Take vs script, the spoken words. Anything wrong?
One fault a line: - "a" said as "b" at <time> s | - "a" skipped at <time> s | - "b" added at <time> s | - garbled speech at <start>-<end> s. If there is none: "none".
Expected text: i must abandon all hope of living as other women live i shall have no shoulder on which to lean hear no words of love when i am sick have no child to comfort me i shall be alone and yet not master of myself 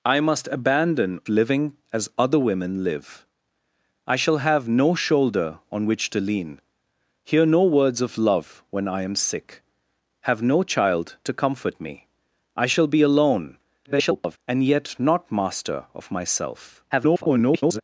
- "all hope of" skipped at 1.2 s
- garbled speech at 13.8-14.4 s
- garbled speech at 16.9-17.8 s